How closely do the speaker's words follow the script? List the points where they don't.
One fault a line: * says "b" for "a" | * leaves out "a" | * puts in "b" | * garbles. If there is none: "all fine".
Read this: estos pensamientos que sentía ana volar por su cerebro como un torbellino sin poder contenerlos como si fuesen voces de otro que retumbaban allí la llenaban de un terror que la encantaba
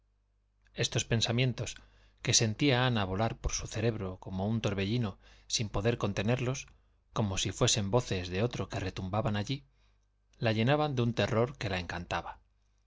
all fine